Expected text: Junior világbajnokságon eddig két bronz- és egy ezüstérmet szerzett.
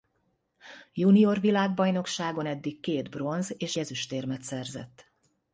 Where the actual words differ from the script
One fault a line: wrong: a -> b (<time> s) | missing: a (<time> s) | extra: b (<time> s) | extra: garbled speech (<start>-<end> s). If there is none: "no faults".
missing: egy (3.7 s)